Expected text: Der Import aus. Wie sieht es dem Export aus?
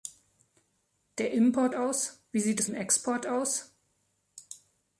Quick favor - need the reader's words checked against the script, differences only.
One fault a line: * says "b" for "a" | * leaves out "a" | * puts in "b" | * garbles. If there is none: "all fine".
all fine